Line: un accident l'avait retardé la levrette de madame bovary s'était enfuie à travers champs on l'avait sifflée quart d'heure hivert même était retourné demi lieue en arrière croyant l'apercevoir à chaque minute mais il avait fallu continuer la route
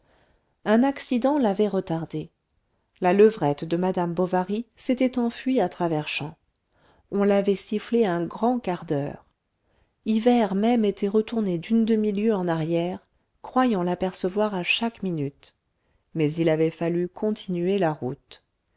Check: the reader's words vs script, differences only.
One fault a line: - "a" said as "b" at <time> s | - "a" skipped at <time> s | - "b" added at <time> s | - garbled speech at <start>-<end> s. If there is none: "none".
- "un grand" added at 8.1 s
- "d'une" added at 11.6 s